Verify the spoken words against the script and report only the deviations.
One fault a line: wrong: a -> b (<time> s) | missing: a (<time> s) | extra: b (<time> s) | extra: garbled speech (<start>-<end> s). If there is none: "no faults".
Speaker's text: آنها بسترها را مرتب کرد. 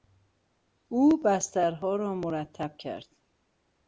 wrong: آنها -> او (0.9 s)